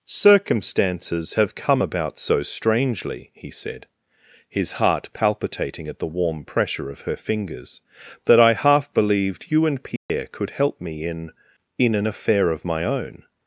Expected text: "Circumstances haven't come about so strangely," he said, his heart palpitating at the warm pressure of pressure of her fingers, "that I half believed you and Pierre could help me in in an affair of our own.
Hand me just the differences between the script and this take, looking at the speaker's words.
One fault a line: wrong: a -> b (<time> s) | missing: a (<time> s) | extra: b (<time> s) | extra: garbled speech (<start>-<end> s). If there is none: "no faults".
wrong: haven't -> have (1.4 s)
missing: pressure of (7.0 s)
wrong: our -> my (12.6 s)